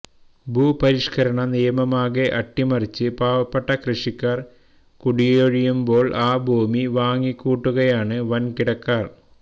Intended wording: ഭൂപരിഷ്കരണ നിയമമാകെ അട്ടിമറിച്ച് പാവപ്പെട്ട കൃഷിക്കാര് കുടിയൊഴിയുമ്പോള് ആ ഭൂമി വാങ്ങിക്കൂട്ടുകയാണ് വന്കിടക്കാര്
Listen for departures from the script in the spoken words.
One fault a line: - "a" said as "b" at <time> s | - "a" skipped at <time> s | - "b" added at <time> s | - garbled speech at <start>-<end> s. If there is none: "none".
none